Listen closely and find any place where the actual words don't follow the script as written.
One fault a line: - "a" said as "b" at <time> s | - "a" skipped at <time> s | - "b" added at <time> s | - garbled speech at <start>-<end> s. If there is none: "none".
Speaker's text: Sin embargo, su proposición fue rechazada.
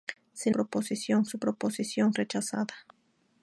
- "embargo" said as "proposición" at 0.5 s
- "fue" skipped at 2.1 s